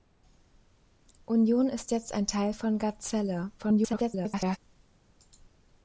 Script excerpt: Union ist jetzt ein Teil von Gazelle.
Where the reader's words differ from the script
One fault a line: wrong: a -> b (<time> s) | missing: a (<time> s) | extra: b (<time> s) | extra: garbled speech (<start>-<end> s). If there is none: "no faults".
extra: garbled speech (3.6-4.6 s)